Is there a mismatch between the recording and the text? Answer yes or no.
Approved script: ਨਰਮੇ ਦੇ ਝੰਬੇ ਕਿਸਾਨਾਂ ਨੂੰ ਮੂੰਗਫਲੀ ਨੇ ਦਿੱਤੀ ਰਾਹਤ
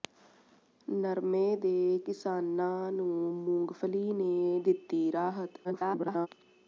yes